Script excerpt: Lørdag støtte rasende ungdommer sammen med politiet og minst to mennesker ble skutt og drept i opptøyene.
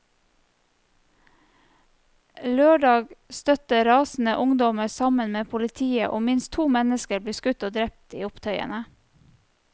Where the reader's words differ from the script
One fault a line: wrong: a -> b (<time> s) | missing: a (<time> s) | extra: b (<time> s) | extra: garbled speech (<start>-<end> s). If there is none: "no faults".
no faults